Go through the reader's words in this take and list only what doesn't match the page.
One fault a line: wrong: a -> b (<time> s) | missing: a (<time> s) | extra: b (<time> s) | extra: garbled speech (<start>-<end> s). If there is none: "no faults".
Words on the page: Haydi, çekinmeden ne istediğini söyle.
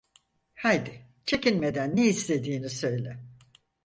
no faults